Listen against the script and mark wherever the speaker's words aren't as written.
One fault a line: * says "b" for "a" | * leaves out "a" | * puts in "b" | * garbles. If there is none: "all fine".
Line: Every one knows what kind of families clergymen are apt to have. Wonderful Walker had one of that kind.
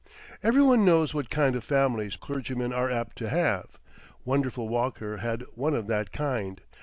all fine